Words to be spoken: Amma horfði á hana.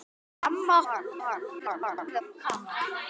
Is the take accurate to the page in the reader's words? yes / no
no